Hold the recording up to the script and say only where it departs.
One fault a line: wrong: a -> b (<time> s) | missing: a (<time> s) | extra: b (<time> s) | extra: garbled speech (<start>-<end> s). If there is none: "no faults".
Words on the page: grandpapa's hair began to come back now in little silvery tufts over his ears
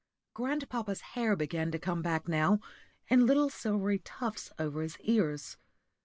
no faults